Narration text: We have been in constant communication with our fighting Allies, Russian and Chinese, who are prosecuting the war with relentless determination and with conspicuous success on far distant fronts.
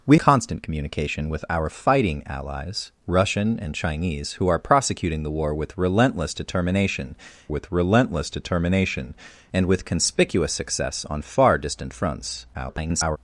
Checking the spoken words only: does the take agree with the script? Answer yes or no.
no